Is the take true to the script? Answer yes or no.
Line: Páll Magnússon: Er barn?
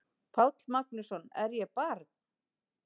no